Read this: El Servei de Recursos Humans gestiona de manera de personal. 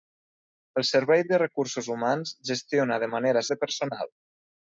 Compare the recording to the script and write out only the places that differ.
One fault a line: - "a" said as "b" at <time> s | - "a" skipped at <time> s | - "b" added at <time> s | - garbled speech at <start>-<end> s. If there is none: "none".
none